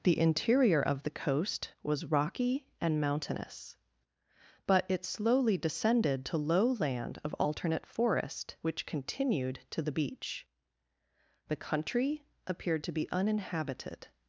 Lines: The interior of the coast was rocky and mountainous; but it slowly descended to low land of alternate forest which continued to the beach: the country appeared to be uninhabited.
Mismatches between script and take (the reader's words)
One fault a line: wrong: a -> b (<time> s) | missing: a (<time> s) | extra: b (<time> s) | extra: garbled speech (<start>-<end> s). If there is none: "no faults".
no faults